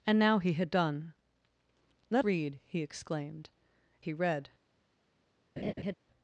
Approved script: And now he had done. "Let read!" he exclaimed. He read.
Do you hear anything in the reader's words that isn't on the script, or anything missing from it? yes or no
no